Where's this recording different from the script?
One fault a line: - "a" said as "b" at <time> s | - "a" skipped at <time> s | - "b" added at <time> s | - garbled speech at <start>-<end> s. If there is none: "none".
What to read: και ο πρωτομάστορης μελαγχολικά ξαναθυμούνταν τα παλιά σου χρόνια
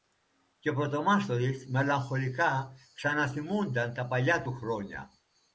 - "σου" said as "του" at 4.4 s